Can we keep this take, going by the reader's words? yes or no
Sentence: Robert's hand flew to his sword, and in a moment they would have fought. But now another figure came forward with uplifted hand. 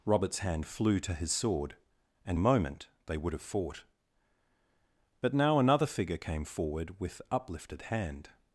no